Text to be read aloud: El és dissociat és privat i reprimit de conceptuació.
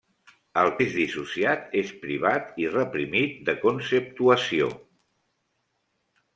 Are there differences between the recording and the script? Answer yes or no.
no